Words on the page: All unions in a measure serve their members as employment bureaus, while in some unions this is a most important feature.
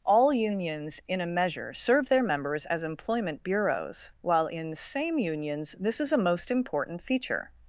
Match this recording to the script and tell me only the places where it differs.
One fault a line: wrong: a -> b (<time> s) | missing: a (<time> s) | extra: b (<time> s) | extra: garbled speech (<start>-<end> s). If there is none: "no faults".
wrong: some -> same (4.7 s)